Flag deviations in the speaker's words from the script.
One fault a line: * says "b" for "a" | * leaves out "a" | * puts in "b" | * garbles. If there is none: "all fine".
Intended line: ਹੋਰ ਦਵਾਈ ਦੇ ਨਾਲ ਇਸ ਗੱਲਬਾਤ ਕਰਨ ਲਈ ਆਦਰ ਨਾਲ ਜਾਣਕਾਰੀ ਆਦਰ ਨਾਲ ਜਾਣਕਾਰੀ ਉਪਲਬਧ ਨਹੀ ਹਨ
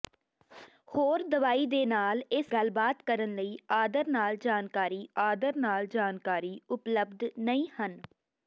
all fine